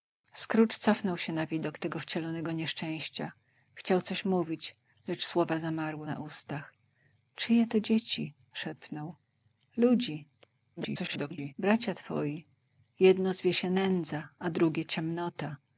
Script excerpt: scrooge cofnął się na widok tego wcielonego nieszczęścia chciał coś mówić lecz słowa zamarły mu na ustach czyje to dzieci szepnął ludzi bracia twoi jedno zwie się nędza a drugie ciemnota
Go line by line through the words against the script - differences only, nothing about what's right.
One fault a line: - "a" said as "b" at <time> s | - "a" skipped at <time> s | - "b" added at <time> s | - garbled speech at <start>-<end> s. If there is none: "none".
- "mu" skipped at 6.1 s
- garbled speech at 10.8-11.5 s